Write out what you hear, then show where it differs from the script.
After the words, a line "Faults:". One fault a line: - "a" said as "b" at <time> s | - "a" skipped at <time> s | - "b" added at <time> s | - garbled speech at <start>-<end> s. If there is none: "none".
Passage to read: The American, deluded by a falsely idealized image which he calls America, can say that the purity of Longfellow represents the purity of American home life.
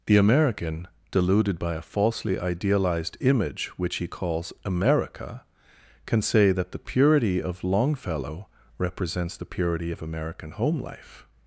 The American, deluded by a falsely idealized image which he calls America, can say that the purity of Longfellow represents the purity of American home life.
Faults:
none